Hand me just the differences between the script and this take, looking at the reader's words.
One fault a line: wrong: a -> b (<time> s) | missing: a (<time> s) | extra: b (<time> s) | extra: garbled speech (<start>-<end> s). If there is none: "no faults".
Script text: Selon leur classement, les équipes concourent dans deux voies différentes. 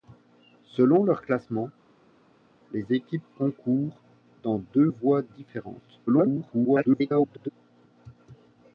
extra: garbled speech (6.1-7.5 s)